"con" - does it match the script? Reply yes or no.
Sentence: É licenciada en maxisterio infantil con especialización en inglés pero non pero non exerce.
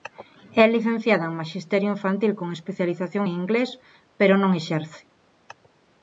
yes